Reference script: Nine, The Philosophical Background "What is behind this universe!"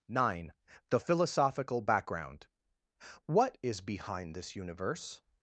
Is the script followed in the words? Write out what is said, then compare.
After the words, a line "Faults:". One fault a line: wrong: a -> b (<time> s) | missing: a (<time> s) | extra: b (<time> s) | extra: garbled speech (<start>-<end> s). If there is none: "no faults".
Nine, The Philosophical Background "What is behind this universe!"
Faults:
no faults